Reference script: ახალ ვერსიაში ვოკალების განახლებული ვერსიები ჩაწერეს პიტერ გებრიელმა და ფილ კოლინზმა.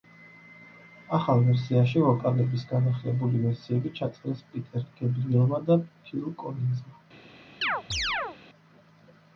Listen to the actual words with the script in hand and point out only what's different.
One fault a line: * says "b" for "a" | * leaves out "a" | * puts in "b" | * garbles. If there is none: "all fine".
all fine